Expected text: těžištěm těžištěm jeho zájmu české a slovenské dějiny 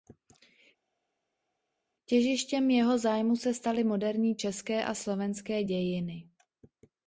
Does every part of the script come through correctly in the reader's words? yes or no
no